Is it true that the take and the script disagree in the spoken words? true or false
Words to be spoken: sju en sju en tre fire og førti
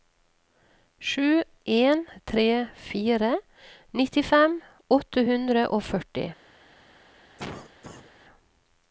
true